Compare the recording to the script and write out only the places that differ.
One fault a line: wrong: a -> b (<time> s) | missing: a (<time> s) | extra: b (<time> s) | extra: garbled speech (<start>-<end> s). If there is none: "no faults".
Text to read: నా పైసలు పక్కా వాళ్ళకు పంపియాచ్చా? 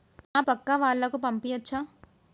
missing: పైసలు (0.4 s)